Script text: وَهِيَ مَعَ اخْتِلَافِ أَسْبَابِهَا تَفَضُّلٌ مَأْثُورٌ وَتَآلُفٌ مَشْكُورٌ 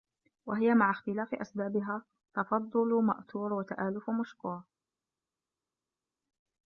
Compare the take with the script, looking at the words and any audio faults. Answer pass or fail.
pass